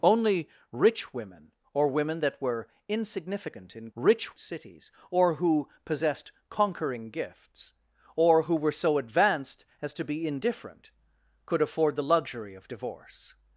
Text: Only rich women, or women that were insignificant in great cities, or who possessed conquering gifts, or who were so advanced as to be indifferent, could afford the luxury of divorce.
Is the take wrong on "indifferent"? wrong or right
right